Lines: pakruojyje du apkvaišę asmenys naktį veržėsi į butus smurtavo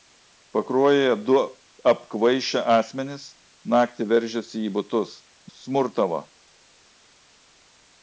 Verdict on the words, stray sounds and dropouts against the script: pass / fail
pass